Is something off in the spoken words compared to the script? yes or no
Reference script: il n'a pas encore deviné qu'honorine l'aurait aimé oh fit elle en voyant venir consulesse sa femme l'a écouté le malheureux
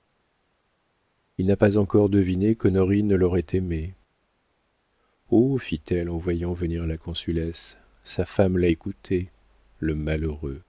yes